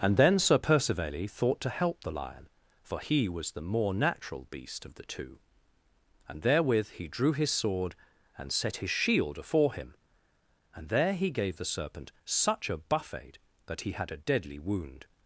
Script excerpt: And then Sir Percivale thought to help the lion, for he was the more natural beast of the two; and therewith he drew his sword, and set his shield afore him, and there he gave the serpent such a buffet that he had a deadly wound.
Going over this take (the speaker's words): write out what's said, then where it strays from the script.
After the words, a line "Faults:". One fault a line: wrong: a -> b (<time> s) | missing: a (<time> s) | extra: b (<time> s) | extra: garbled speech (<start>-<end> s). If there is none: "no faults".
And then Sir Percivale thought to help the lion, for he was the more natural beast of the two; and therewith he drew his sword, and set his shield afore him, and there he gave the serpent such a buffet that he had a deadly wound.
Faults:
no faults